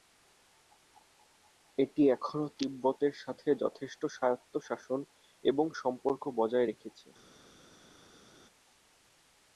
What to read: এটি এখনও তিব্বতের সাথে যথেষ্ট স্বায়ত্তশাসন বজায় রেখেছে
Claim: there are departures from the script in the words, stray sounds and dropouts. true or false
true